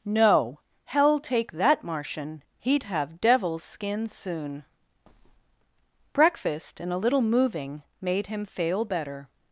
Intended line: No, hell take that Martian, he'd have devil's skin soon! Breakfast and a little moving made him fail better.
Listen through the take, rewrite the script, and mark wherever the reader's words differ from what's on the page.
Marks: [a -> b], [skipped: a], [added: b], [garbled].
No, hell take that Martian, he'd have devil's skin soon! Breakfast and a little moving made him fail better.